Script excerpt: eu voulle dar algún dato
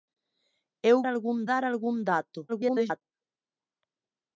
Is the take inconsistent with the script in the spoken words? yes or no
yes